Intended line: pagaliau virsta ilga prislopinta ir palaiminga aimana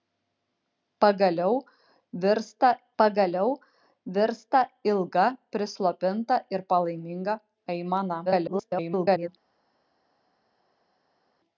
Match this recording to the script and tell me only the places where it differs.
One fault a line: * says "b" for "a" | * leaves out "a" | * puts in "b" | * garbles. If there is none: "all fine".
* puts in "pagaliau virsta"
* garbles